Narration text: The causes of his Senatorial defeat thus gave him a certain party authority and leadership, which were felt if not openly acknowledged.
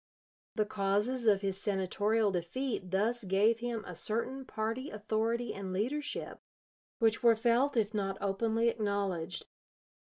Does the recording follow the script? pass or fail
pass